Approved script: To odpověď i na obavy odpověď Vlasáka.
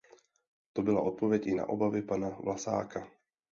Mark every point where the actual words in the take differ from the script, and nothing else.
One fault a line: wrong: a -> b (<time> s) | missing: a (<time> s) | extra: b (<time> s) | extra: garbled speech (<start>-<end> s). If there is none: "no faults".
extra: byla (0.8 s)
wrong: odpověď -> pana (2.0 s)